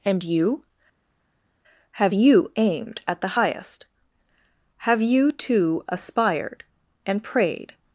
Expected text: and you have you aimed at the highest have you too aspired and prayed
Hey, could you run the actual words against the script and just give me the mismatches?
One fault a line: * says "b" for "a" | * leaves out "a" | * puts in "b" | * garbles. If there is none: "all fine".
all fine